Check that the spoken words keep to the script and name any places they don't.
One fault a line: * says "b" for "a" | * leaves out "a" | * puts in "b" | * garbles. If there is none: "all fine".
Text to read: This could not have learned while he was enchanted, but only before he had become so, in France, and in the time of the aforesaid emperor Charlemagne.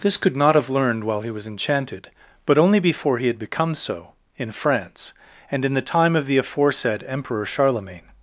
all fine